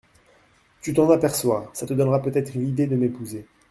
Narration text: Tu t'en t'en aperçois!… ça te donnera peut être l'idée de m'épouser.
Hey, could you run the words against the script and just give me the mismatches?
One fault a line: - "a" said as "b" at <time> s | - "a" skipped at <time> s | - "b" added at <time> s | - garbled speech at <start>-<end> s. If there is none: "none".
- "t'en" skipped at 1.1 s